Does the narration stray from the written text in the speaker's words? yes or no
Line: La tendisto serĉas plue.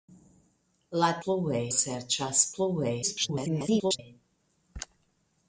yes